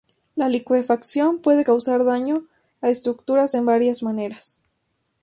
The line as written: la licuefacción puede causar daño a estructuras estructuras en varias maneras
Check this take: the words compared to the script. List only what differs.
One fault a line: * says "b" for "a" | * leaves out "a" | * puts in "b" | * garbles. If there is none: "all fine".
* leaves out "estructuras"